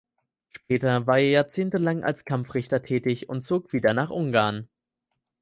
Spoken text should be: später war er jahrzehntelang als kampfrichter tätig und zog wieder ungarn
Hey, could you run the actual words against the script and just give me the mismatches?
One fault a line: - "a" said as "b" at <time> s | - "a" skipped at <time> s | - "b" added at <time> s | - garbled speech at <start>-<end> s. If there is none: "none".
- "nach" added at 3.9 s